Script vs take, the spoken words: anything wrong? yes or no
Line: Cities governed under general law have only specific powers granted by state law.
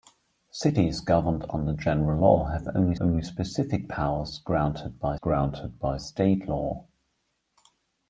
yes